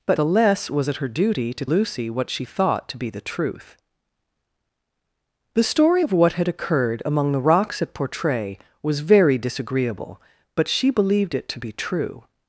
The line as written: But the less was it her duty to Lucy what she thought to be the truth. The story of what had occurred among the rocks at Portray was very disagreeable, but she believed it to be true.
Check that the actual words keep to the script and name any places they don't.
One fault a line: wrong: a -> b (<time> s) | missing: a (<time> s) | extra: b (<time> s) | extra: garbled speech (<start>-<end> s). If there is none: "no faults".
no faults